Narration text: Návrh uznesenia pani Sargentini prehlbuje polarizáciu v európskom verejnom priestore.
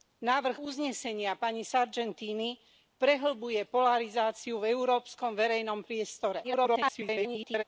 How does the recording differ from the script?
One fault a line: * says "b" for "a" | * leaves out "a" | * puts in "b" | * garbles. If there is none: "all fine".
* garbles